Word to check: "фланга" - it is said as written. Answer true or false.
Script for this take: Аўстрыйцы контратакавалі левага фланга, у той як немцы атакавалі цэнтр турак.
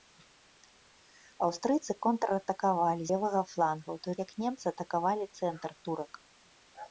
true